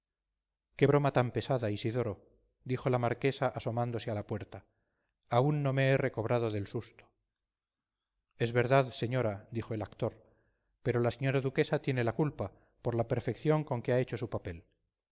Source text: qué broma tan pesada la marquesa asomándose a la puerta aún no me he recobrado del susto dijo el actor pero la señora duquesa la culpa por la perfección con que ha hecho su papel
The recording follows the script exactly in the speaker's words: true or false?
false